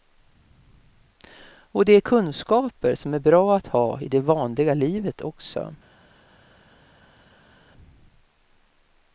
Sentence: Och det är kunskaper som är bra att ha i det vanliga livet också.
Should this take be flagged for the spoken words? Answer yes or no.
no